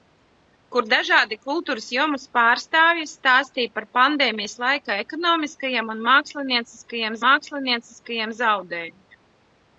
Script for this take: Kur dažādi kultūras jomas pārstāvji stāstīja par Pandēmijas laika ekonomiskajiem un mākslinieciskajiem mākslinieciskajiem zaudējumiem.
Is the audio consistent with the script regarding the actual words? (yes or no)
yes